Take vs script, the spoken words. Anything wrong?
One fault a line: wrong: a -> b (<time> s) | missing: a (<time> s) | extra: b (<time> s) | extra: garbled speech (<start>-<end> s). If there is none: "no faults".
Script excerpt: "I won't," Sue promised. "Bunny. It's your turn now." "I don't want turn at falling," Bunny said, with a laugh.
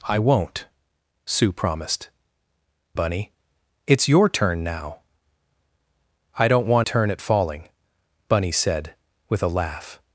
no faults